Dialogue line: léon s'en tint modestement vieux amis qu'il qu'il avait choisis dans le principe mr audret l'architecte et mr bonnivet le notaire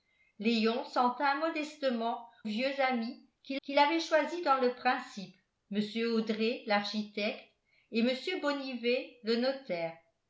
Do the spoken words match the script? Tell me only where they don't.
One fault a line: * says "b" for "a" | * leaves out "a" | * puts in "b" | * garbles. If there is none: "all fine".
all fine